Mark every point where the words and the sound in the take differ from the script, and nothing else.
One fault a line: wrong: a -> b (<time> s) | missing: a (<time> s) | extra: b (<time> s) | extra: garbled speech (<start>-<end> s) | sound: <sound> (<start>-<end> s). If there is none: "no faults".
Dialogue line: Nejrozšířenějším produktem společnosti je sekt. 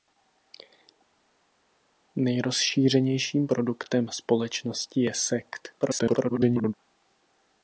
extra: garbled speech (5.8-6.7 s)